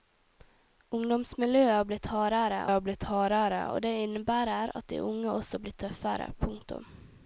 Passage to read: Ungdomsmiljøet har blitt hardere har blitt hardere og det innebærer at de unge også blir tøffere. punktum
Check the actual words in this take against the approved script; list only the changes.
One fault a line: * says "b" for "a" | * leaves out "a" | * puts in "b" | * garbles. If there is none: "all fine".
all fine